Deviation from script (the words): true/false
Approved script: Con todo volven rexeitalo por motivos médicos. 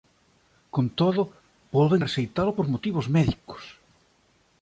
false